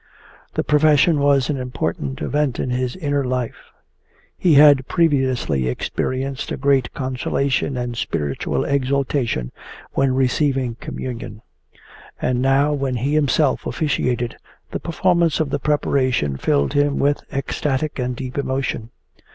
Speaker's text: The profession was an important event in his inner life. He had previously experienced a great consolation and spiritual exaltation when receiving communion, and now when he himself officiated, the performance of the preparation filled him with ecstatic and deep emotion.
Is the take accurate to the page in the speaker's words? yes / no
yes